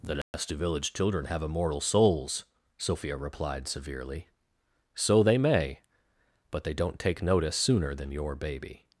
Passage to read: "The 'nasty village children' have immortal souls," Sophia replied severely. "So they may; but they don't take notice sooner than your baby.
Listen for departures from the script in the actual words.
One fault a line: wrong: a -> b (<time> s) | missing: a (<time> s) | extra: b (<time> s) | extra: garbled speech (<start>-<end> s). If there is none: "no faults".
no faults